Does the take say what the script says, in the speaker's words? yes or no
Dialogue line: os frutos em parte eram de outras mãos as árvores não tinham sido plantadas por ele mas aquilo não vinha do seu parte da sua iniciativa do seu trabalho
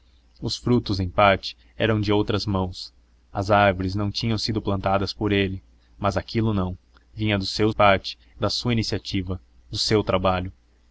yes